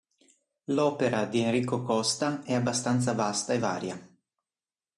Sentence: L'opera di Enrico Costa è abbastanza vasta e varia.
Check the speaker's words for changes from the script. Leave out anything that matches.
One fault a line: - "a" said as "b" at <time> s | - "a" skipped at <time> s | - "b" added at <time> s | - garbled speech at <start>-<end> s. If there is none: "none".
none